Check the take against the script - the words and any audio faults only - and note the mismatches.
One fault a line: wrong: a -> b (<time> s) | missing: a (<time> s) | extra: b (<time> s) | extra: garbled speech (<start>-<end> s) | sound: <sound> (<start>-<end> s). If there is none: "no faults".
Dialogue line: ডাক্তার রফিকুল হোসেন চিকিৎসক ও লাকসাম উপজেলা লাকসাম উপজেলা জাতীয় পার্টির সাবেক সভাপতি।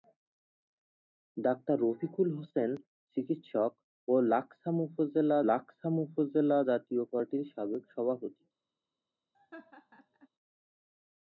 sound: laugh (9.3-10.3 s)